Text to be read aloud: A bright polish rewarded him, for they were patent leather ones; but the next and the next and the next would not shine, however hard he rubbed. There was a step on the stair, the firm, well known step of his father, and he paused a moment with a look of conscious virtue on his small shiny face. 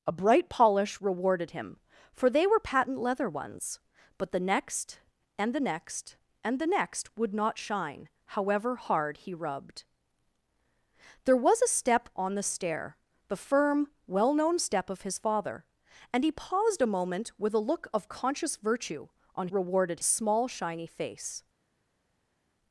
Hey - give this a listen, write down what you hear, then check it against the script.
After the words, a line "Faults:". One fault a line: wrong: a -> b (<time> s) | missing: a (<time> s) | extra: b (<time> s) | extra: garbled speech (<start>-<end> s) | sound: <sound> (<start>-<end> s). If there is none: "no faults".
A bright polish rewarded him, for they were patent leather ones; but the next and the next and the next would not shine, however hard he rubbed. There was a step on the stair, the firm, well known step of his father, and he paused a moment with a look of conscious virtue on rewarded small shiny face.
Faults:
wrong: his -> rewarded (19.5 s)